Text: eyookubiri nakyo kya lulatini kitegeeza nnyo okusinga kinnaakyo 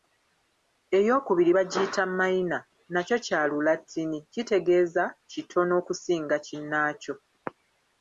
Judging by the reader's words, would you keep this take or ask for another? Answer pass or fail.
fail